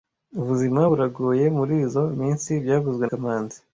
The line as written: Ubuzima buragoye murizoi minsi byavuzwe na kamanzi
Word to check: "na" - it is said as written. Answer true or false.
false